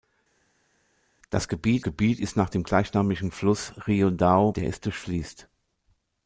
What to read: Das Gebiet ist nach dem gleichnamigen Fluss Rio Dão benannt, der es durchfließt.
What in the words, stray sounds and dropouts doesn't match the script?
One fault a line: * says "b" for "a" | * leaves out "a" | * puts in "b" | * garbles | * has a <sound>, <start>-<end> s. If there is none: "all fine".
* puts in "Gebiet"
* leaves out "benannt"